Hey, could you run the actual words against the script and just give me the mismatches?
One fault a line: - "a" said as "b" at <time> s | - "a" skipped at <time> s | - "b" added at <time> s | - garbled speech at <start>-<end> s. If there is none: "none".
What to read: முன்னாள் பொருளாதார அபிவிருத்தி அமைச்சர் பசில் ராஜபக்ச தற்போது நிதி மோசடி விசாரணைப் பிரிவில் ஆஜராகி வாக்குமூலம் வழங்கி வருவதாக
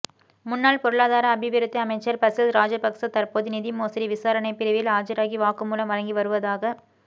none